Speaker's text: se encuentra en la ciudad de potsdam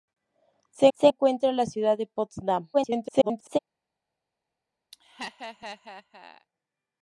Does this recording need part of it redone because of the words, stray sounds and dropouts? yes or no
yes